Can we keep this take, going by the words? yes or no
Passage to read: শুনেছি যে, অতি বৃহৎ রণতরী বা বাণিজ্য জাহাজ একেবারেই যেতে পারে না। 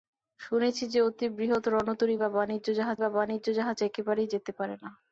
no